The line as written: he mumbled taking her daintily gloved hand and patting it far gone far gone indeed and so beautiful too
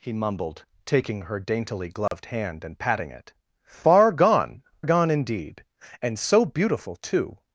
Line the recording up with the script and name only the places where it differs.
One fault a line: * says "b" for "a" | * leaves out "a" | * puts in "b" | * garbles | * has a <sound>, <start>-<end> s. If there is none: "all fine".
* has a dropout, 2.1-2.1 s
* leaves out "far"